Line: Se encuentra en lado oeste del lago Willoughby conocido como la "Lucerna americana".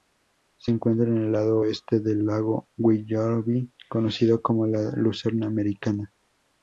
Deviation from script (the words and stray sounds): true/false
true